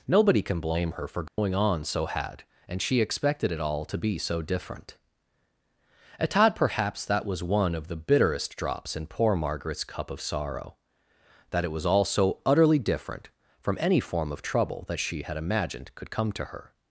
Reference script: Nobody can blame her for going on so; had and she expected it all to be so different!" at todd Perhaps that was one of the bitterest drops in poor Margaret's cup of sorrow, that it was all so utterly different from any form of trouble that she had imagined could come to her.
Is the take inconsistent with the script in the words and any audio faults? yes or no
yes